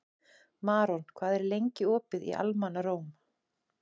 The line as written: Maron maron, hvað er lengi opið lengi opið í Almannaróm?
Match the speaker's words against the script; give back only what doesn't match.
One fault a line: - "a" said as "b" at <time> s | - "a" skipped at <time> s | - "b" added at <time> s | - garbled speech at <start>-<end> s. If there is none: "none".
- "maron" skipped at 1.0 s
- "lengi opið" skipped at 2.2 s